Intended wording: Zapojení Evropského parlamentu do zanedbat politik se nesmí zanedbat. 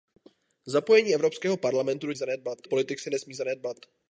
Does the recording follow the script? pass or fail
pass